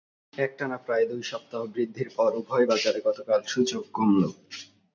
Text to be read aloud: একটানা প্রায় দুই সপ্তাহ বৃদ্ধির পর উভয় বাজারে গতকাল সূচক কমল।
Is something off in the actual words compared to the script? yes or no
no